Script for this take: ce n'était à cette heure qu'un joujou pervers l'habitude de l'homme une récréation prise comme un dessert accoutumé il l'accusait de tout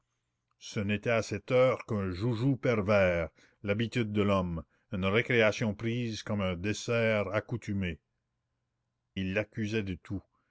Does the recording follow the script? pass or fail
pass